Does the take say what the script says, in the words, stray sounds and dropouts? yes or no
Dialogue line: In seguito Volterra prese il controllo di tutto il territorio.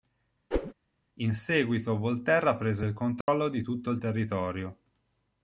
no